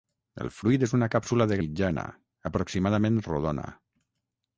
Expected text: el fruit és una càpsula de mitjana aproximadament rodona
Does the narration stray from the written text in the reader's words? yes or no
no